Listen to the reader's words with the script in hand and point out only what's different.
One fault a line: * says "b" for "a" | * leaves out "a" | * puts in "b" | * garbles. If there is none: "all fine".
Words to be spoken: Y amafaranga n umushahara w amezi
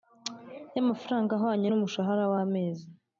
* puts in "ahwanye"